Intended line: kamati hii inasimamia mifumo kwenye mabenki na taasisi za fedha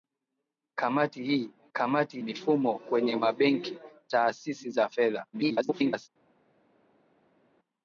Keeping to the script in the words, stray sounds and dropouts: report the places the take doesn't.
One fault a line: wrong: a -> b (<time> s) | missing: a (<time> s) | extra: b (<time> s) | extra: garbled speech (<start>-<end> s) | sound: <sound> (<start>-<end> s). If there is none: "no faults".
wrong: inasimamia -> kamati (1.7 s)
missing: na (3.8 s)
extra: garbled speech (5.3-6.1 s)